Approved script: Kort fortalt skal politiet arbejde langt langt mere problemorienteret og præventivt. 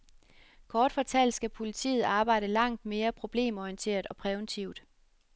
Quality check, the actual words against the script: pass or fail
fail